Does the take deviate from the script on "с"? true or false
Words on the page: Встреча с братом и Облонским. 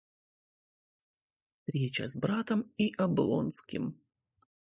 false